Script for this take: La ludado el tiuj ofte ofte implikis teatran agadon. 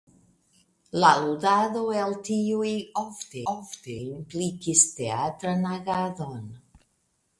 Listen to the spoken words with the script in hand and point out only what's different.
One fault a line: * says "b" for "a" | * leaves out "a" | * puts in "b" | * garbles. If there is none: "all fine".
all fine